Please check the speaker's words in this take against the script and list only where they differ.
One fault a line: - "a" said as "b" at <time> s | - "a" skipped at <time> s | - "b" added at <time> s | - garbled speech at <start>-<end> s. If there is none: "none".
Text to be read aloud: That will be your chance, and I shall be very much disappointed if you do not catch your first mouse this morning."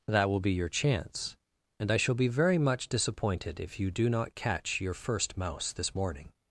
none